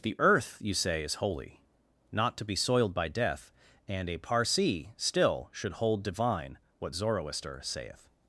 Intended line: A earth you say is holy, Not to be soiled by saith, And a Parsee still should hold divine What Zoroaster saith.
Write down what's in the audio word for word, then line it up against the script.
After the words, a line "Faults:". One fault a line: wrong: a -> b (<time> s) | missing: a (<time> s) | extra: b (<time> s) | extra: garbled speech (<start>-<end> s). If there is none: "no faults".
The earth you say is holy, Not to be soiled by death, And a Parsee still should hold divine What Zoroaster saith.
Faults:
wrong: A -> The (0.0 s)
wrong: saith -> death (3.1 s)